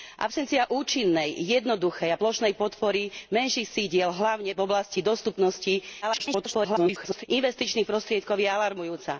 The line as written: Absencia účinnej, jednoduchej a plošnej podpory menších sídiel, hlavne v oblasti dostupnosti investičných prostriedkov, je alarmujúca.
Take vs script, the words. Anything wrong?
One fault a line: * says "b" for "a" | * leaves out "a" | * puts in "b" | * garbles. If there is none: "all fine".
* garbles